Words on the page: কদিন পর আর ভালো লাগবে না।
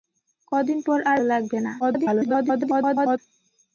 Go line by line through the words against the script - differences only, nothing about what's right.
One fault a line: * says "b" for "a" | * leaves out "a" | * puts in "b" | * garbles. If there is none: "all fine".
* leaves out "ভালো"
* garbles